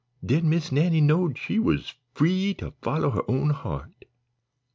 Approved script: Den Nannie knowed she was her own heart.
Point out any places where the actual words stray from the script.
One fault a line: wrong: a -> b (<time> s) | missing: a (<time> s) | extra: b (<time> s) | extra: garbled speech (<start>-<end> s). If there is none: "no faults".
extra: Miss (0.5 s)
extra: free to follow (2.1 s)